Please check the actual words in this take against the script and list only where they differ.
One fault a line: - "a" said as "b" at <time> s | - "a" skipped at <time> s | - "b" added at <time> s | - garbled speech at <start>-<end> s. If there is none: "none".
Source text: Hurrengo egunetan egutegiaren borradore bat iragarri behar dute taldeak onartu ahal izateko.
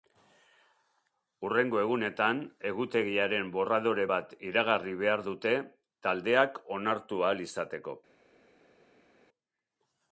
none